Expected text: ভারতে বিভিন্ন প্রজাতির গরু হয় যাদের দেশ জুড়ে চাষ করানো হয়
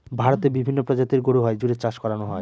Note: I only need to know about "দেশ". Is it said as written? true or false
false